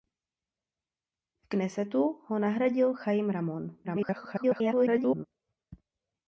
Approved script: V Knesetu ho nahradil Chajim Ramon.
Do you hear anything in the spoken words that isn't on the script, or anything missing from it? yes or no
yes